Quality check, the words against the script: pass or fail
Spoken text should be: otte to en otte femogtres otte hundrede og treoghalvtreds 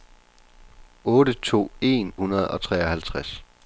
fail